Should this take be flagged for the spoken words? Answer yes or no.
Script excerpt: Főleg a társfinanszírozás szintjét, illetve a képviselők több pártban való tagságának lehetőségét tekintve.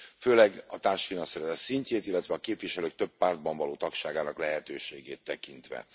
no